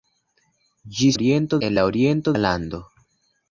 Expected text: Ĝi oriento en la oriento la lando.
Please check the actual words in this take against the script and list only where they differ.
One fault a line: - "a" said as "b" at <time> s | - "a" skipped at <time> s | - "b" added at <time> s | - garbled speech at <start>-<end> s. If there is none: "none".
none